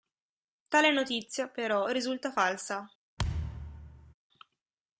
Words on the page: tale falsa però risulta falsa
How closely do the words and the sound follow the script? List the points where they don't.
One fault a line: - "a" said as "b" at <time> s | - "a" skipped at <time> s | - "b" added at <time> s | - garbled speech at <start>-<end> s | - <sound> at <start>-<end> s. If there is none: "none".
- "falsa" said as "notizia" at 0.9 s
- thud at 3.2-4.1 s